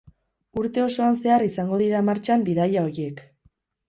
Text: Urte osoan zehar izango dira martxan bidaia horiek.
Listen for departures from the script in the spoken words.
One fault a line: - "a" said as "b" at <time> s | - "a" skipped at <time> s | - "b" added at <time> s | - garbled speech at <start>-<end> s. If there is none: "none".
none